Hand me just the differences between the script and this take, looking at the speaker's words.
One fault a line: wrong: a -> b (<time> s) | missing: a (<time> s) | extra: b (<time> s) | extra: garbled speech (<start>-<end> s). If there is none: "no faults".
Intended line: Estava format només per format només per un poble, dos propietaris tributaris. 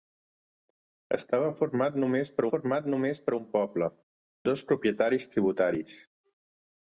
no faults